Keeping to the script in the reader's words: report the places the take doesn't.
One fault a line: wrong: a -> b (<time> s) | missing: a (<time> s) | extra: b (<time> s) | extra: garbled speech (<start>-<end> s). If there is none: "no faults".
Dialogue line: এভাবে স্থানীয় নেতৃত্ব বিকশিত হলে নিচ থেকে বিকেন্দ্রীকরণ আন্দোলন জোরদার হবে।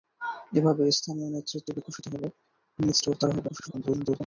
missing: থেকে বিকেন্দ্রীকরণ আন্দোলন (3.0 s)
extra: garbled speech (3.5-4.2 s)